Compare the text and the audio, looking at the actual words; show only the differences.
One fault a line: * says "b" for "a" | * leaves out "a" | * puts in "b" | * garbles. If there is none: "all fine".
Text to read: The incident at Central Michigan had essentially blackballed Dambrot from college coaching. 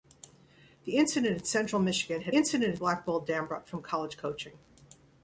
* says "incident" for "essentially"